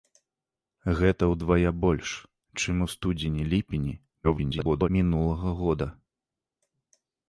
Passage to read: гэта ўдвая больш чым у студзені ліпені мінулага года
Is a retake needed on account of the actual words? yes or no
yes